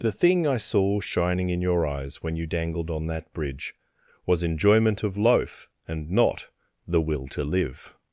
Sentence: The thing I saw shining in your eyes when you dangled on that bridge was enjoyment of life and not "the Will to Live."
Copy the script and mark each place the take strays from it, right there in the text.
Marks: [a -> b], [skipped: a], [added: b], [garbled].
The thing I saw shining in your eyes when you dangled on that bridge was enjoyment of [life -> loaf] and not "the Will to Live."